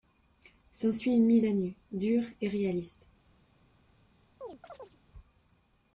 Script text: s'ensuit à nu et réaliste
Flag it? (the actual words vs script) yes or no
yes